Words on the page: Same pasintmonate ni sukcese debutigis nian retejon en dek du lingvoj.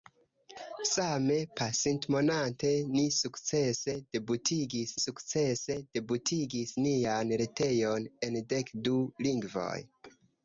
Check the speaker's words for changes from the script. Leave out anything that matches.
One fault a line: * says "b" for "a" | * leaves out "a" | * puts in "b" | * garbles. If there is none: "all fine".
* puts in "sukcese debutigis"